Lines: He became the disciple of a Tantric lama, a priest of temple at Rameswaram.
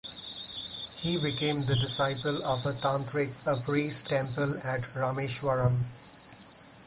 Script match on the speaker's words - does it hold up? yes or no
no